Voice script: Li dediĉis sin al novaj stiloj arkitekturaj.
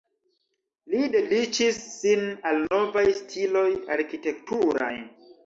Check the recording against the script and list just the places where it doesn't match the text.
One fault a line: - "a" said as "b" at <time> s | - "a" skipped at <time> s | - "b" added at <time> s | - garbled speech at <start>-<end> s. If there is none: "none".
none